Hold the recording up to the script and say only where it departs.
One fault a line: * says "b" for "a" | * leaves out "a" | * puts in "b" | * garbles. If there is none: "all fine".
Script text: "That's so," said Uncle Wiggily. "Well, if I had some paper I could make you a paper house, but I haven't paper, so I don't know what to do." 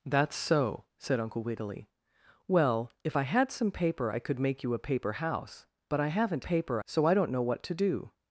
all fine